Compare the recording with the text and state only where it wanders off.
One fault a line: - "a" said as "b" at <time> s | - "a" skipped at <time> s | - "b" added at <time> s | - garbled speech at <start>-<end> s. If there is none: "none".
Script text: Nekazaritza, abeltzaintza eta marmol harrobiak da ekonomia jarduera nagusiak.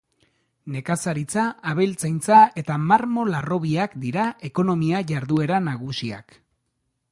- "da" said as "dira" at 4.1 s